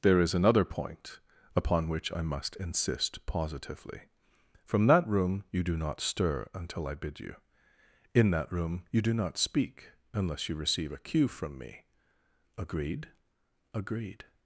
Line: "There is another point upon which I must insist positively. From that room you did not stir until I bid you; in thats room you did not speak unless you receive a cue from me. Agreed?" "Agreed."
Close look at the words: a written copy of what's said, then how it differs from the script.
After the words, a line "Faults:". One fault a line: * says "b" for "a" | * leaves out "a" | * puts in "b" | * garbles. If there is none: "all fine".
"There is another point upon which I must insist positively. From that room you do not stir until I bid you; in that room you do not speak unless you receive a cue from me. Agreed?" "Agreed."
Faults:
* says "do" for "did"
* says "that" for "thats"
* says "do" for "did"